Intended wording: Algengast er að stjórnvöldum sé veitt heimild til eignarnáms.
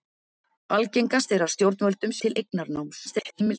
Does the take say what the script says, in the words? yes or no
no